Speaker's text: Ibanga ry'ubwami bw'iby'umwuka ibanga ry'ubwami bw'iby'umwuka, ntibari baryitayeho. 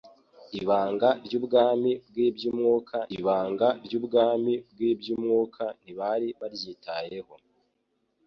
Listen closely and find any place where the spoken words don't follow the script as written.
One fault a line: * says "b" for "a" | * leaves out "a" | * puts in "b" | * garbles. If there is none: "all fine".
all fine